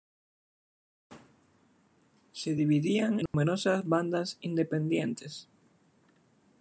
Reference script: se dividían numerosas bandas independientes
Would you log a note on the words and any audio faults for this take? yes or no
yes